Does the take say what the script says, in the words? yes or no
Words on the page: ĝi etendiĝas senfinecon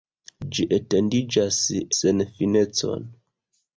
yes